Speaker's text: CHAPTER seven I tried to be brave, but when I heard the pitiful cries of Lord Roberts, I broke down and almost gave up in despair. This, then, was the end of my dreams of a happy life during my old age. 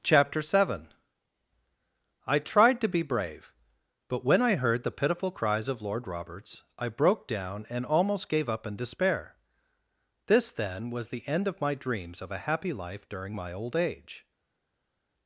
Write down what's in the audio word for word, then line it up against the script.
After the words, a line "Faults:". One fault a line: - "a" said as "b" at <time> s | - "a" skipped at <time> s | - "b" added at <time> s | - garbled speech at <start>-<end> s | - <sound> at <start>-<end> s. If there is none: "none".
CHAPTER seven I tried to be brave, but when I heard the pitiful cries of Lord Roberts, I broke down and almost gave up in despair. This, then, was the end of my dreams of a happy life during my old age.
Faults:
none